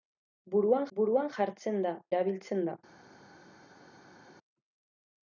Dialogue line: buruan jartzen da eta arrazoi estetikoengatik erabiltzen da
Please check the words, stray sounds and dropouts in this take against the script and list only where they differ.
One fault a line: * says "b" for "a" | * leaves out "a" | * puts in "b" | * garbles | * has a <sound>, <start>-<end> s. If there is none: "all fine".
* puts in "buruan"
* leaves out "eta arrazoi estetikoengatik"